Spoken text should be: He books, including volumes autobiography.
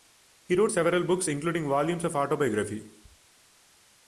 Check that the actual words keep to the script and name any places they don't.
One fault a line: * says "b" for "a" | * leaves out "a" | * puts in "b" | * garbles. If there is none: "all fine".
* puts in "wrote several"
* puts in "of"